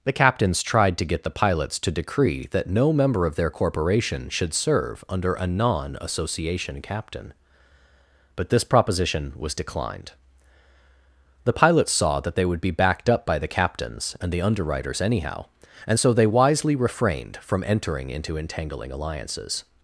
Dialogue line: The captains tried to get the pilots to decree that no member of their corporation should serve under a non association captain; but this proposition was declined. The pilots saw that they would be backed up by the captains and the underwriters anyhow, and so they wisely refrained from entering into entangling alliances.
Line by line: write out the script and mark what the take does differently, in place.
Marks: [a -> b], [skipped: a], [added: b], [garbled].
The captains tried to get the pilots to decree that no member of their corporation should serve under a non association captain; but this proposition was declined. The pilots saw that they would be backed up by the captains and the underwriters anyhow, and so they wisely refrained from entering into entangling alliances.